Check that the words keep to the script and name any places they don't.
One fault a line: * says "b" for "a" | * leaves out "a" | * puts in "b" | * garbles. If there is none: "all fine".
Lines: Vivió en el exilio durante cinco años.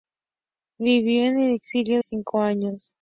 * leaves out "durante"